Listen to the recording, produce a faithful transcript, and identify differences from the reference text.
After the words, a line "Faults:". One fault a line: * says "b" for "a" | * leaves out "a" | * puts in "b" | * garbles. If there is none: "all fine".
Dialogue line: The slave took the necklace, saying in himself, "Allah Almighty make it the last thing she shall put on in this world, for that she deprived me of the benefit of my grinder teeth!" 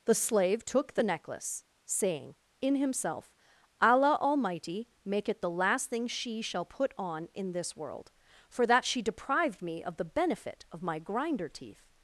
The slave took the necklace, saying in himself, "Allah Almighty make it the last thing she shall put on in this world, for that she deprived me of the benefit of my grinder teeth!"
Faults:
all fine